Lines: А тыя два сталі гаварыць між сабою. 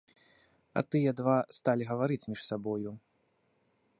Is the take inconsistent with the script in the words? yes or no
no